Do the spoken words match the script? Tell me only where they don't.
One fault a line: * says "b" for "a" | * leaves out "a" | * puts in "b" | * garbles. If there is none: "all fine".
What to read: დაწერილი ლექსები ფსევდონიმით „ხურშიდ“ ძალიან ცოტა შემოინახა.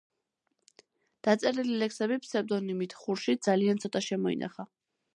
all fine